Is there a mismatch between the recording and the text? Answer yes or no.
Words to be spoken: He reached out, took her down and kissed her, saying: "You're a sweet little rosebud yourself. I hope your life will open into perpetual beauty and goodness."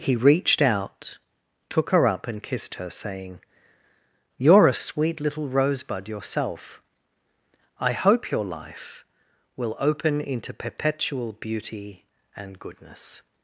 yes